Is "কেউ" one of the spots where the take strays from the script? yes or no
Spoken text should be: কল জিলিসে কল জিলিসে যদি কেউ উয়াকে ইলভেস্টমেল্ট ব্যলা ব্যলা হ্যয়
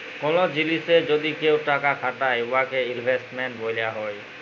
yes